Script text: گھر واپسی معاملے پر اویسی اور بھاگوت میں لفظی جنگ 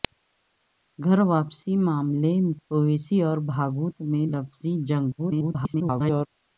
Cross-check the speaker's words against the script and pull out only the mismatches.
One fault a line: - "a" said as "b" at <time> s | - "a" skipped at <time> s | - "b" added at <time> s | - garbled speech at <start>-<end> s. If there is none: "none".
- "پر" skipped at 2.3 s
- garbled speech at 5.2-6.3 s